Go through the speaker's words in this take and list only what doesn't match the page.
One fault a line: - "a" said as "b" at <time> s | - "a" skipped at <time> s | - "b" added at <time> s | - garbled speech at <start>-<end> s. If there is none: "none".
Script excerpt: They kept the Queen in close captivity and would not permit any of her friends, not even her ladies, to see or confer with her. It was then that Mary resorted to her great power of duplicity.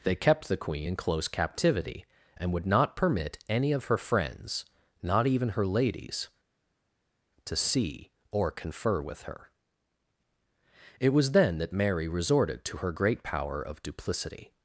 none